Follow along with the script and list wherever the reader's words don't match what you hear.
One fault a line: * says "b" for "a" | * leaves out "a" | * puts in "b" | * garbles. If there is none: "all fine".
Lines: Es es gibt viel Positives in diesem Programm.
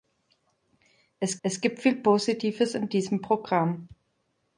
all fine